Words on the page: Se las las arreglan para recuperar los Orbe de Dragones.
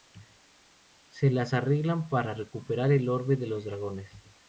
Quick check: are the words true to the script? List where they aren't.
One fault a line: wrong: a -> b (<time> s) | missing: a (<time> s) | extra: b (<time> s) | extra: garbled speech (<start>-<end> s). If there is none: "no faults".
missing: las (1.5 s)
wrong: los -> el (2.9 s)
extra: los (3.5 s)